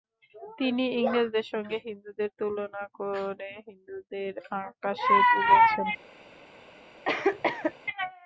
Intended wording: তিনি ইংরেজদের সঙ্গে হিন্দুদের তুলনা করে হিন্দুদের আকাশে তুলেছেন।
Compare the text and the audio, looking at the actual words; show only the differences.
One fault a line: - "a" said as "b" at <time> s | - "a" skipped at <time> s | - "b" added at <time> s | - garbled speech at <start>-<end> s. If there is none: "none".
none